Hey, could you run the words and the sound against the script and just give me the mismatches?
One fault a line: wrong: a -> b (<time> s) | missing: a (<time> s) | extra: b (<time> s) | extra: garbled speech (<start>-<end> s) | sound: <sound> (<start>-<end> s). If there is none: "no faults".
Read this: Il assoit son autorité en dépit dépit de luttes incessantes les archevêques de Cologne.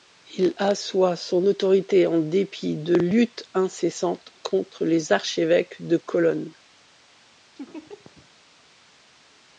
missing: dépit (2.8 s)
extra: contre (4.4 s)
sound: laugh (7.6-8.3 s)